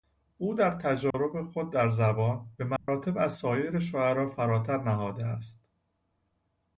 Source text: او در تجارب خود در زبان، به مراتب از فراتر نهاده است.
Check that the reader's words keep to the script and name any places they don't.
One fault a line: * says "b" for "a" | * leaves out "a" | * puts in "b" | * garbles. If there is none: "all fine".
* puts in "سایر شعرا"